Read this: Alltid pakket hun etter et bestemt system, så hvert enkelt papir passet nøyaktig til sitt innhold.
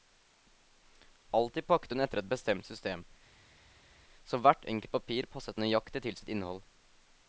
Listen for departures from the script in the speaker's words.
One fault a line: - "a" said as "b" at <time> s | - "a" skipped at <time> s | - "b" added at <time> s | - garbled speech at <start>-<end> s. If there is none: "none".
none